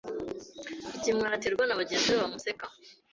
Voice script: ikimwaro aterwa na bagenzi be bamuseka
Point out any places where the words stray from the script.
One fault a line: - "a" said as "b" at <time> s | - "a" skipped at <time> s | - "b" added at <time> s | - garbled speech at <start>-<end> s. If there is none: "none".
none